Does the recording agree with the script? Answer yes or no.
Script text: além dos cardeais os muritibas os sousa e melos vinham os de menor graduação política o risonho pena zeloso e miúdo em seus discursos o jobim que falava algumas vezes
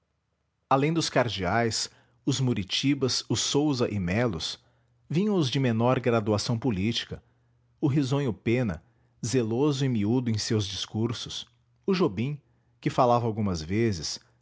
yes